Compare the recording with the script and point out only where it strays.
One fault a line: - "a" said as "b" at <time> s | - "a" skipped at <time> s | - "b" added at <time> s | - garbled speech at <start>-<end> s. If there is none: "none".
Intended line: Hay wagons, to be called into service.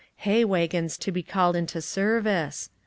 none